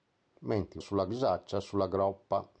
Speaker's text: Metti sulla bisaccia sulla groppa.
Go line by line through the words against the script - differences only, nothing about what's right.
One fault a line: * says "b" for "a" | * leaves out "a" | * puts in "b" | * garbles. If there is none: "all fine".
all fine